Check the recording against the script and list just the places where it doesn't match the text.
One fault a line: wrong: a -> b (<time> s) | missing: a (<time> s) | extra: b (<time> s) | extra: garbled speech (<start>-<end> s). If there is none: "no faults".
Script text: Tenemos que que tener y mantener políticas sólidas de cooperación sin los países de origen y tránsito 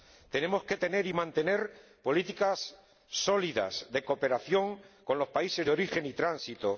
missing: que (0.8 s)
wrong: sin -> con (5.0 s)